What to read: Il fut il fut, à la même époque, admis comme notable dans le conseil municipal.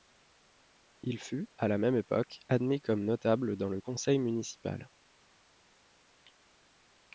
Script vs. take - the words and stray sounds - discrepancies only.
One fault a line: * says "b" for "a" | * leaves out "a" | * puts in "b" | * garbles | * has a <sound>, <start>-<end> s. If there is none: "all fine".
* leaves out "il fut"